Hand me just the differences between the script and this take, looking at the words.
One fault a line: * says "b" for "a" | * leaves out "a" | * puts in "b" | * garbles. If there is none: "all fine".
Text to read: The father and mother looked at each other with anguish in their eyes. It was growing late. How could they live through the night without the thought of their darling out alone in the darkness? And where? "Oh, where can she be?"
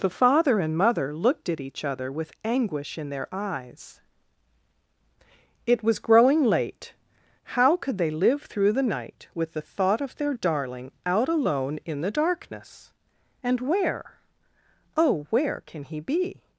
* says "with" for "without"
* says "he" for "she"